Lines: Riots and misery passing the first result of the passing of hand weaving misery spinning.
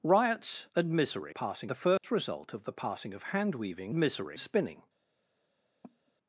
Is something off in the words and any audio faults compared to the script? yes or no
yes